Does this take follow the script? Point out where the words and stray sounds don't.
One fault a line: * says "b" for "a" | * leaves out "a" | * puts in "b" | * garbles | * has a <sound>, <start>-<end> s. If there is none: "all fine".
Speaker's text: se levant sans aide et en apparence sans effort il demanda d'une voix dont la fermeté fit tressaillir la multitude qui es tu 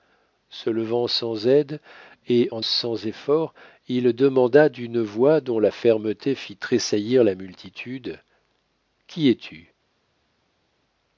* leaves out "apparence"